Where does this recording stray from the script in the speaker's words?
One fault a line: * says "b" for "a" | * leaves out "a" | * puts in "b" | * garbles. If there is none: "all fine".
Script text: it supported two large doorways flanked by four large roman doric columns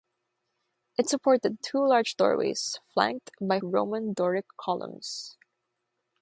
* leaves out "four large"